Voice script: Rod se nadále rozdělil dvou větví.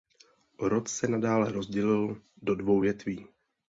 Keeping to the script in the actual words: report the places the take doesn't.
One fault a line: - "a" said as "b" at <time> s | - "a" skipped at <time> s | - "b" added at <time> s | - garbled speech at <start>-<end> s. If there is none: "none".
- "do" added at 2.4 s